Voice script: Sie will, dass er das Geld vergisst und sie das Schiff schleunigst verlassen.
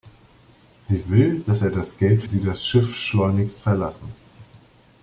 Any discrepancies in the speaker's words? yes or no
yes